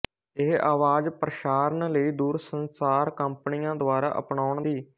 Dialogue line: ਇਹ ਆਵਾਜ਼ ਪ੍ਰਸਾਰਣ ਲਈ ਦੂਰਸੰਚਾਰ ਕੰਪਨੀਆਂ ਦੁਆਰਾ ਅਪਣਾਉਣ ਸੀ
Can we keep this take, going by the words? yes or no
yes